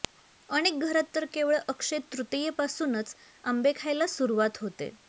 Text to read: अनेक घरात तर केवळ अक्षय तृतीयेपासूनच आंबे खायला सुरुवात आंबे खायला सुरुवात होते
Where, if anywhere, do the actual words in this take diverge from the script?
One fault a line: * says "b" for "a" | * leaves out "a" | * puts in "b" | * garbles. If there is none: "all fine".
* leaves out "आंबे खायला सुरुवात"